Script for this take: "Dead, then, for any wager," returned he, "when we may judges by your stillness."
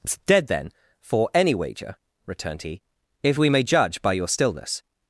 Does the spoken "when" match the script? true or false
false